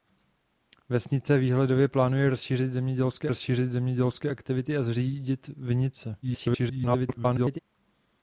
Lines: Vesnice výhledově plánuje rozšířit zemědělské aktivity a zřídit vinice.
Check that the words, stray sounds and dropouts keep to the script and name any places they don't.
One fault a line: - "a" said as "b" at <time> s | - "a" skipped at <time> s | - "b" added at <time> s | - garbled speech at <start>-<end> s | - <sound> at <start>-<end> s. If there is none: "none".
- "rozšířit zemědělské" added at 3.3 s
- garbled speech at 6.2-7.6 s